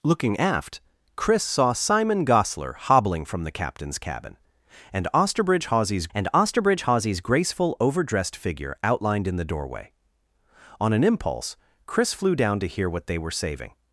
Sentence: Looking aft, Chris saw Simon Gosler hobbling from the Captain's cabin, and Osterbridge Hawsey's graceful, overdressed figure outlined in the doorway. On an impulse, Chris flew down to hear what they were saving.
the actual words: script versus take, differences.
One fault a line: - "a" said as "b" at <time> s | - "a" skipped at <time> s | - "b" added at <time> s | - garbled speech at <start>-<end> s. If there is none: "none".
- "and Osterbridge Hawsey's" added at 6.1 s